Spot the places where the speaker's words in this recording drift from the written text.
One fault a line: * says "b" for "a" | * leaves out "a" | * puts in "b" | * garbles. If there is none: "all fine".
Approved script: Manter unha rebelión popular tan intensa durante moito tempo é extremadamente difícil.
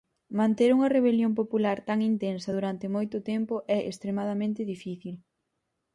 all fine